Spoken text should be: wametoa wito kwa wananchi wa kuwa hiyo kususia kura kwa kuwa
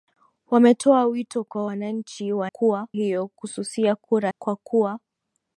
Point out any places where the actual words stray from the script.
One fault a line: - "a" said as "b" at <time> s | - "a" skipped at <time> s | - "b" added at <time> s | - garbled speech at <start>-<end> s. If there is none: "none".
none